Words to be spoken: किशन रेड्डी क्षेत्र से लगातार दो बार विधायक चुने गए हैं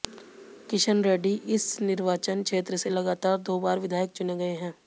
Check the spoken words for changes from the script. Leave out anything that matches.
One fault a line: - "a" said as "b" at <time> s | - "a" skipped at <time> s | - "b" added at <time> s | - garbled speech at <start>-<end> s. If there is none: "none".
- "इस निर्वाचन" added at 1.5 s